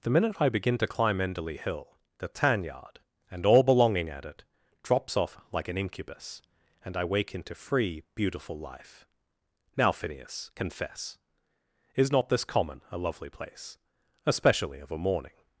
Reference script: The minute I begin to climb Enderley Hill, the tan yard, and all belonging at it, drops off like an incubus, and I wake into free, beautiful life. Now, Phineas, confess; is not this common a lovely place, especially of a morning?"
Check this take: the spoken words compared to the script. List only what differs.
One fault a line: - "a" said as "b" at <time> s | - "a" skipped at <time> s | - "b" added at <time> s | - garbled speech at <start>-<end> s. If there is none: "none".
none